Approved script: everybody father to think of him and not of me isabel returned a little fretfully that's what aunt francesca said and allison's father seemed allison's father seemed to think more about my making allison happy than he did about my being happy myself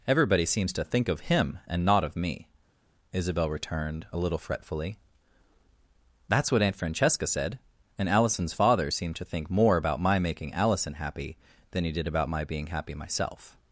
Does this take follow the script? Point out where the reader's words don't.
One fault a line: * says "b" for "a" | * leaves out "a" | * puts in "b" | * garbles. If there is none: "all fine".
* says "seems" for "father"
* leaves out "allison's father seemed"